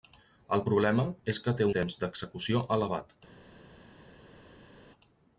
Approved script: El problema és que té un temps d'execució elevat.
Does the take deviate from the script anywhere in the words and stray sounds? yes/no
yes